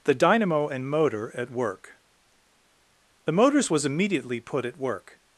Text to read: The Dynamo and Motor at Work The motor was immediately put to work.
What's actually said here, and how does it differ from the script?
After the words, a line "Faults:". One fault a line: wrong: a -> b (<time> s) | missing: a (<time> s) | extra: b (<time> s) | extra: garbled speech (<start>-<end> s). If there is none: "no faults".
The Dynamo and Motor at Work The motors was immediately put at work.
Faults:
wrong: motor -> motors (3.3 s)
wrong: to -> at (4.6 s)